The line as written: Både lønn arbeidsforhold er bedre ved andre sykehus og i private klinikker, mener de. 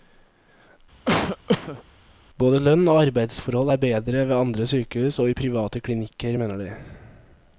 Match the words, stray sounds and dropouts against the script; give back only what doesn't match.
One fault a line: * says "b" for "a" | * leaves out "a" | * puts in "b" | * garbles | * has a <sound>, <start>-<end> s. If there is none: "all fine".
* has a cough, 1.1-1.8 s
* puts in "og"